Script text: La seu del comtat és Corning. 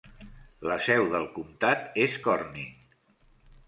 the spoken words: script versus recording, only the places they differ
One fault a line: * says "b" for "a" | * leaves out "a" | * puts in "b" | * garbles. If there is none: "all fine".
all fine